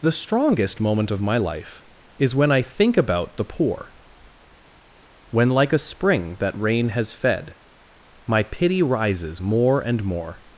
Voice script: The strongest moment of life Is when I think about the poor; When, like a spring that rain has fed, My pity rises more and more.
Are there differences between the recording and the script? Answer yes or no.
yes